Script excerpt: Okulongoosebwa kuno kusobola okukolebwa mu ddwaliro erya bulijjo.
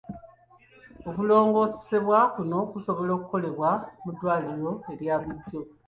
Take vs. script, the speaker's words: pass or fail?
pass